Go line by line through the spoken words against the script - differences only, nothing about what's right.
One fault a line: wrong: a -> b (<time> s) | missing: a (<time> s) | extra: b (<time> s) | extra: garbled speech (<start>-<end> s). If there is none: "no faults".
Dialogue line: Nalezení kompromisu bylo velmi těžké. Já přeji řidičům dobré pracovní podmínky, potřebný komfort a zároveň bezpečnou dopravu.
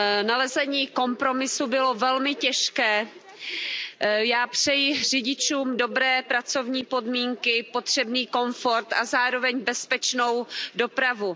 no faults